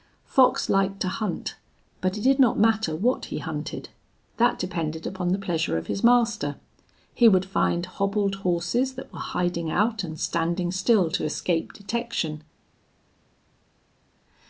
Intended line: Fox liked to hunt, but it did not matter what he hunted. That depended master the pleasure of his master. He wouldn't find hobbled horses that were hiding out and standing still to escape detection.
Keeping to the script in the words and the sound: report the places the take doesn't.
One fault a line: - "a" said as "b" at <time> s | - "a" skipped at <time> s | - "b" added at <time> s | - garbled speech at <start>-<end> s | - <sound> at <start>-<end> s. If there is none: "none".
- "master" said as "upon" at 5.1 s
- "wouldn't" said as "would" at 7.3 s